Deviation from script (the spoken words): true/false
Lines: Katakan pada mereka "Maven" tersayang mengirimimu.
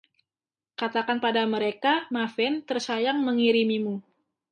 false